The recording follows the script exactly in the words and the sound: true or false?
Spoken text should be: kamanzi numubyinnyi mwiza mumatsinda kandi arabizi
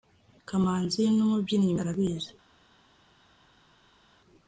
false